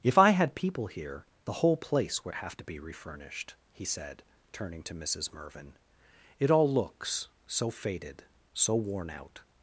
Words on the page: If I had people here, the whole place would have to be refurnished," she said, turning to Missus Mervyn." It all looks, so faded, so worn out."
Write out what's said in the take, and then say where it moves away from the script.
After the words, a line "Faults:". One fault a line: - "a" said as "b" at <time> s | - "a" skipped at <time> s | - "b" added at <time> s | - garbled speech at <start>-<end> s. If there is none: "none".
If I had people here, the whole place would have to be refurnished," he said, turning to Missus Mervyn." It all looks, so faded, so worn out."
Faults:
- "she" said as "he" at 3.7 s